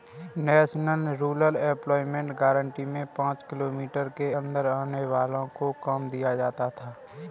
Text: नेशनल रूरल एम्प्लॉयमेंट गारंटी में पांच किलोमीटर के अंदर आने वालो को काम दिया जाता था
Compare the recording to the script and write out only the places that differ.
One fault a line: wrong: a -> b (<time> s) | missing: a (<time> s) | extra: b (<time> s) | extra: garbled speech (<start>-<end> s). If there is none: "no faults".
no faults